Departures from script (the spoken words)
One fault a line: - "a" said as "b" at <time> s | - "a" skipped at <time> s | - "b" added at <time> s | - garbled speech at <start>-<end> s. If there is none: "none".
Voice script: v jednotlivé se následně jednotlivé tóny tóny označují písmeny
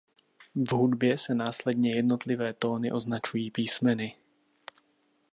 - "jednotlivé" said as "hudbě" at 0.7 s
- "tóny" skipped at 2.9 s